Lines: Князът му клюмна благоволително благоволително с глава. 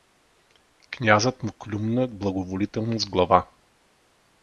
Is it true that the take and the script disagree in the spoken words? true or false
true